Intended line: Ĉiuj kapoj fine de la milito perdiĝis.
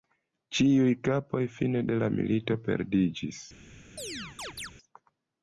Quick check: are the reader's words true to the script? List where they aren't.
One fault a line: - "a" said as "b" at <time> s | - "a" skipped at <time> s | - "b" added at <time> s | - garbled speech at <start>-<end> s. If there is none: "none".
none